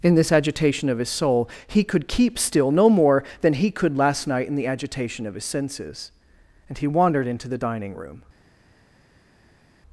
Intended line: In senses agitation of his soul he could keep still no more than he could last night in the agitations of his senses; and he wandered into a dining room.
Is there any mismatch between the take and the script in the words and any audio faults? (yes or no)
yes